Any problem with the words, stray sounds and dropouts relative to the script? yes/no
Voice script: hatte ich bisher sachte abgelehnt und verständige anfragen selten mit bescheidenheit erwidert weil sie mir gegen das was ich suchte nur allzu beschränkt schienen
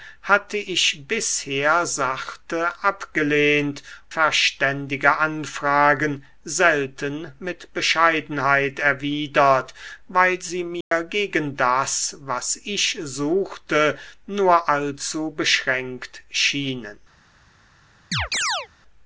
yes